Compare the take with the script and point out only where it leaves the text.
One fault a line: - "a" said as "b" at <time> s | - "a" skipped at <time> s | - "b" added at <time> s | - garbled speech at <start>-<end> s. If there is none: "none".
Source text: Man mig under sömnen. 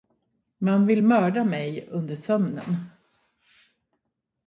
- "vill mörda" added at 0.8 s